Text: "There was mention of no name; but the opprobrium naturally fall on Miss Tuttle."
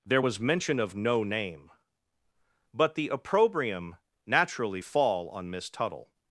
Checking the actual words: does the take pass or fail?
pass